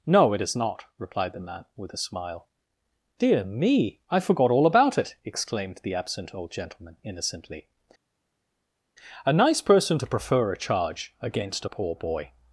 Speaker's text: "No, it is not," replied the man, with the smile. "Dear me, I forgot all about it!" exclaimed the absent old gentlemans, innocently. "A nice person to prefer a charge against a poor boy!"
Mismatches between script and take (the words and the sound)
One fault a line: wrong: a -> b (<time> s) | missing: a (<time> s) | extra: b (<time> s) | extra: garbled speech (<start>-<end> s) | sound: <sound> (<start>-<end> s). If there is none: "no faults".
wrong: the -> a (1.9 s)
wrong: gentlemans -> gentleman (6.5 s)